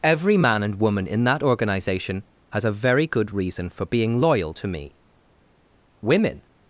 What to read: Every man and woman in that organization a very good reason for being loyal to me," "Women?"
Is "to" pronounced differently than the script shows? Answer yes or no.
no